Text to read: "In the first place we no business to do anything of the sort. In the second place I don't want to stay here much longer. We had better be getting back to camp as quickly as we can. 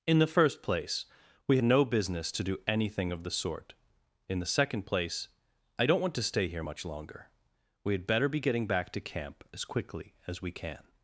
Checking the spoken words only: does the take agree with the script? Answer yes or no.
yes